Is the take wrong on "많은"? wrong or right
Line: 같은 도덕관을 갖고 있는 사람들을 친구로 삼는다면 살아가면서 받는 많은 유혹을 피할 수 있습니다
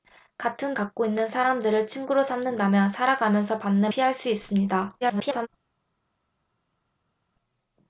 wrong